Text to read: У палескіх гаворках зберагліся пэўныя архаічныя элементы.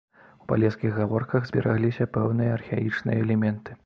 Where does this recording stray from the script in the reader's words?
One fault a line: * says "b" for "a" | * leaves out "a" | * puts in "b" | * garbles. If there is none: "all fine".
all fine